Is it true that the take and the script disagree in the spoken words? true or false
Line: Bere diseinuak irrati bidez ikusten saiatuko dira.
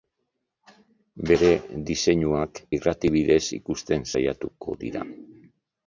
false